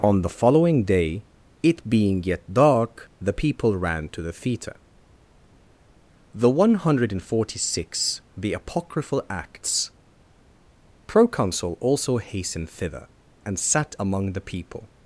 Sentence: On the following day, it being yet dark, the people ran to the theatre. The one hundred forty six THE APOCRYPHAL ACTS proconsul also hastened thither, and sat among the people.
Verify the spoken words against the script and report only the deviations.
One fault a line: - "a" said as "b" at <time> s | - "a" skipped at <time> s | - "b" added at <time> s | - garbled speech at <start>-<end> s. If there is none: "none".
none